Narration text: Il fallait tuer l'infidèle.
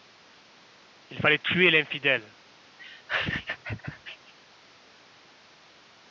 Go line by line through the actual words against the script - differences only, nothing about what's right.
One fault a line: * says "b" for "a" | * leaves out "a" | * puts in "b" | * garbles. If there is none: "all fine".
all fine